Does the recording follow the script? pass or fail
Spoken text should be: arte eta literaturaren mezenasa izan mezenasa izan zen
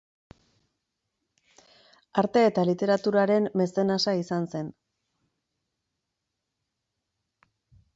fail